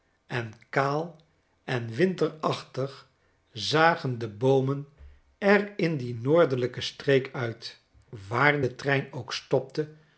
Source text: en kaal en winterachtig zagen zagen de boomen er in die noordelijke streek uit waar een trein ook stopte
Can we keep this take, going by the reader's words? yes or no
no